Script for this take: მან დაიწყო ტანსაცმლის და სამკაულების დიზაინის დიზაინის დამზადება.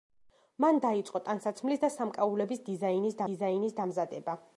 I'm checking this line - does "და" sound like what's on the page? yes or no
yes